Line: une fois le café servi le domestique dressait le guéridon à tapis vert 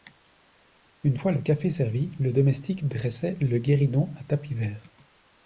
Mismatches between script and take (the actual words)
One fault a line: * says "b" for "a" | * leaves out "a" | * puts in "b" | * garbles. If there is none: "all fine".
all fine